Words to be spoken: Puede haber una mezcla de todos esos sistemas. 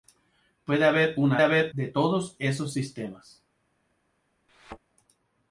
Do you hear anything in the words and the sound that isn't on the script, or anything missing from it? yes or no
yes